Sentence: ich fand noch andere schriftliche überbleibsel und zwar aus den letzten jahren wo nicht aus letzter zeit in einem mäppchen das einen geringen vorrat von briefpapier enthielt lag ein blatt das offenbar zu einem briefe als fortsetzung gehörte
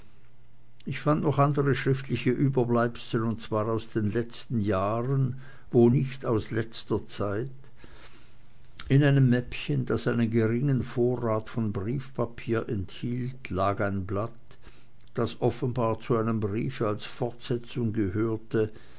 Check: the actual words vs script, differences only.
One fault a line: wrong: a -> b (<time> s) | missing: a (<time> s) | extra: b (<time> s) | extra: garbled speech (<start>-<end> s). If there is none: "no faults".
no faults